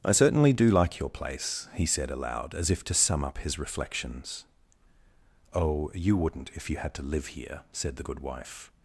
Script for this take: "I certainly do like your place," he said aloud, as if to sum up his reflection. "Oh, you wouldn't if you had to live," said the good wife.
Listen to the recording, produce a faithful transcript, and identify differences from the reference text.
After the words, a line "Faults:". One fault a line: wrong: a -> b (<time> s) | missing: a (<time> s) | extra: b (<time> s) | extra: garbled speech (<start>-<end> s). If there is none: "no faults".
"I certainly do like your place," he said aloud, as if to sum up his reflections. "Oh, you wouldn't if you had to live here," said the good wife.
Faults:
wrong: reflection -> reflections (3.6 s)
extra: here (7.3 s)